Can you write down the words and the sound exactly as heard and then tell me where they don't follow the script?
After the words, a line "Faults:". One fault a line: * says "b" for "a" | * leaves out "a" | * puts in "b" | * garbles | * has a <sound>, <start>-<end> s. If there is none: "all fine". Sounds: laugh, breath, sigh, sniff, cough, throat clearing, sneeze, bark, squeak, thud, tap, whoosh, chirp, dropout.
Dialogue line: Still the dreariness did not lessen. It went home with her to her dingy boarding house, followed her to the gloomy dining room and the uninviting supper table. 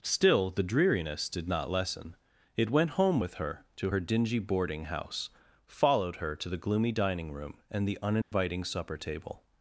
Still the dreariness did not lessen. It went home with her to her dingy boarding house, followed her to the gloomy dining room and the uninviting supper table.
Faults:
* has a dropout, 8.2-8.3 s